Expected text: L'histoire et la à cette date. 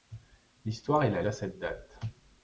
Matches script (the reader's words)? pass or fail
pass